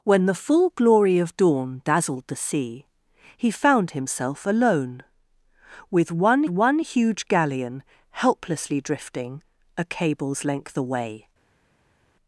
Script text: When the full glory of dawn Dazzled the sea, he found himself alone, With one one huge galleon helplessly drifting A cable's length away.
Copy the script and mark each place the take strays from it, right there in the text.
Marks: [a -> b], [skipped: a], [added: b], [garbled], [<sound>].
When the full glory of dawn Dazzled the sea, he found himself alone, With one one huge galleon helplessly drifting A cable's length away.